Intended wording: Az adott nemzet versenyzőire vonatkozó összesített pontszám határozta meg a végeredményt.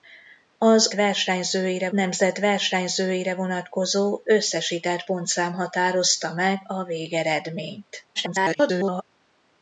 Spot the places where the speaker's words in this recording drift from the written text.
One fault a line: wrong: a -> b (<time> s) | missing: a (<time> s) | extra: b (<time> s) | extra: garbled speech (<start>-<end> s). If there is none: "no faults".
wrong: adott -> versenyzőire (0.9 s)
extra: garbled speech (8.2-9.0 s)